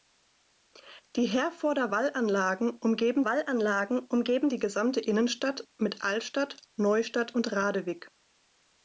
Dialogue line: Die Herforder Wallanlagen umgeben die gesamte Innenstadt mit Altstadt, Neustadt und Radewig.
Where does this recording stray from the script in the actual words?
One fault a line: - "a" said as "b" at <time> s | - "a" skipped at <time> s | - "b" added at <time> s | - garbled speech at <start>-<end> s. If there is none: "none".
- "Wallanlagen umgeben" added at 3.2 s